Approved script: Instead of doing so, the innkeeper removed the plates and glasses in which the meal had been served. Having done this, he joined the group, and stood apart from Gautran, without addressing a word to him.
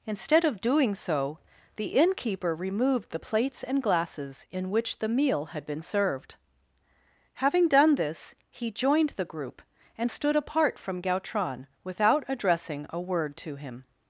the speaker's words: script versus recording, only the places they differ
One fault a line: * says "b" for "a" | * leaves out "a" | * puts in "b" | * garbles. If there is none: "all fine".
all fine